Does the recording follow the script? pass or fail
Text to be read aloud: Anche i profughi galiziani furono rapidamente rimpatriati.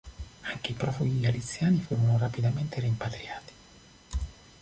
pass